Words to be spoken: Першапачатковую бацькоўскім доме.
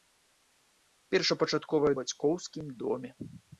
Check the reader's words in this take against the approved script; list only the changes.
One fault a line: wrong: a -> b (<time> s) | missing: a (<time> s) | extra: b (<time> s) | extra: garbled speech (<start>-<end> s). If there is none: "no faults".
no faults